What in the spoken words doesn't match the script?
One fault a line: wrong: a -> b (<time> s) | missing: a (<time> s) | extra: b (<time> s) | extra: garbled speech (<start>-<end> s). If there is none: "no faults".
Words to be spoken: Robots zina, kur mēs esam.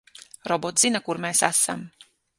no faults